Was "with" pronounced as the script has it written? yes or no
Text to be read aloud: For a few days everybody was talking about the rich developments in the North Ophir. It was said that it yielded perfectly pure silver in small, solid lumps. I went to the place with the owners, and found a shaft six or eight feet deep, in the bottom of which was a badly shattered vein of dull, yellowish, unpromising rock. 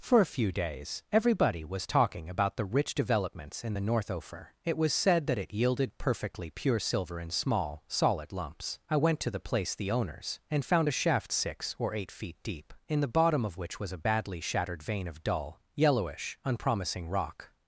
no